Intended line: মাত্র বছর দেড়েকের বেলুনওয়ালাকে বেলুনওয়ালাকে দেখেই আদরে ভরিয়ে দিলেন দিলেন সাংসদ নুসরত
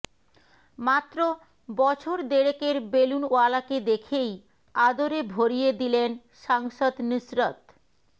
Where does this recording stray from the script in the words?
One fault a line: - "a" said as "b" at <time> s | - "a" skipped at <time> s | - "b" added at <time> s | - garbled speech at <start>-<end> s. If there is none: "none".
- "বেলুনওয়ালাকে" skipped at 3.8 s
- "দিলেন" skipped at 6.1 s